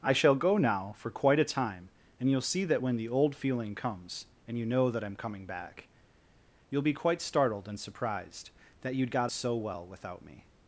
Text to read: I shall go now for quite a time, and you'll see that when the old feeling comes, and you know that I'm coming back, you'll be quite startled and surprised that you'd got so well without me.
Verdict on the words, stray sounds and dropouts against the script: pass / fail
pass